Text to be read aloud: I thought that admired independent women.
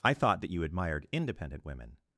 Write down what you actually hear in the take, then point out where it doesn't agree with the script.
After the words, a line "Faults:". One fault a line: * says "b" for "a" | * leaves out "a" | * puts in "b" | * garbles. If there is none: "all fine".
I thought that you admired independent women.
Faults:
* puts in "you"